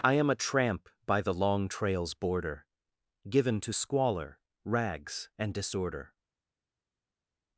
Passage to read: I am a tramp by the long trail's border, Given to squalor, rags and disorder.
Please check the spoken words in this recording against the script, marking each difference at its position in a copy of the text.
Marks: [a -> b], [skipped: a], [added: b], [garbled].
I am a tramp by the long trail's border, Given to squalor, rags and disorder.